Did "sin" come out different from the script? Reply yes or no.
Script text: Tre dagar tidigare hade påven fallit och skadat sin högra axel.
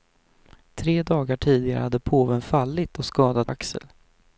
yes